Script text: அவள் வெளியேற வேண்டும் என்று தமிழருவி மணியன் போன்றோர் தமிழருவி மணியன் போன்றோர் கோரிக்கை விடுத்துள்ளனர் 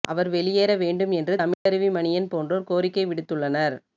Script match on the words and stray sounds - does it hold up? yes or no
no